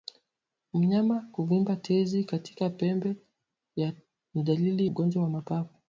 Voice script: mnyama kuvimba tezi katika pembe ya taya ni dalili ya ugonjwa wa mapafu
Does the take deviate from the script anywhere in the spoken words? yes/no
yes